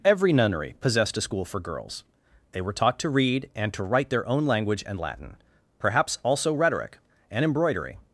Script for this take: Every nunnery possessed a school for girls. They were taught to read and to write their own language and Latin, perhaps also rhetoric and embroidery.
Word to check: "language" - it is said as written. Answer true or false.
true